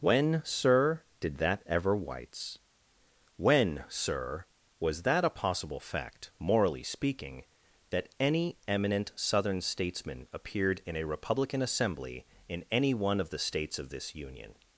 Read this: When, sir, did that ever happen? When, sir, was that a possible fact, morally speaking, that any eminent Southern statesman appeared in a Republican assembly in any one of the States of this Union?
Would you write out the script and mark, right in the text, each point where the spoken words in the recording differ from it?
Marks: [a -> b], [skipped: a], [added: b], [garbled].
When, sir, did that ever [happen? -> whites] When, sir, was that a possible fact, morally speaking, that any eminent Southern statesman appeared in a Republican assembly in any one of the States of this Union?